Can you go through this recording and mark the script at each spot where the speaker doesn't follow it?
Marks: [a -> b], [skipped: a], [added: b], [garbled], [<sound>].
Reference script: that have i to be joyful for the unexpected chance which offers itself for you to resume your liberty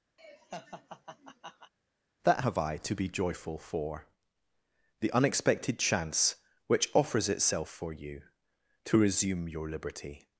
[laugh] that have i to be joyful for the unexpected chance which offers itself for you to resume your liberty